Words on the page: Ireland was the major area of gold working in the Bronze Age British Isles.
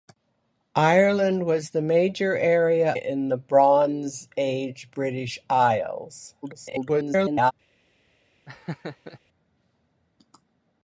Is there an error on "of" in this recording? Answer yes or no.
yes